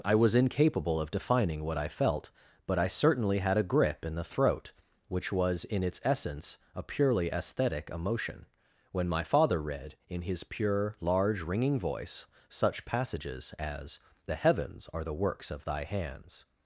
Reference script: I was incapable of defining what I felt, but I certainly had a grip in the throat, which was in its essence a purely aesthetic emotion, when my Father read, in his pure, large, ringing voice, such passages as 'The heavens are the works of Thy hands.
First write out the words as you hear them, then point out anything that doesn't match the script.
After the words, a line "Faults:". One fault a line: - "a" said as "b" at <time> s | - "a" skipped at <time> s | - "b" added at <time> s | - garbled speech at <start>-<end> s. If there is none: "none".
I was incapable of defining what I felt, but I certainly had a grip in the throat, which was in its essence a purely aesthetic emotion, when my Father read, in his pure, large, ringing voice, such passages as 'The heavens are the works of Thy hands.
Faults:
none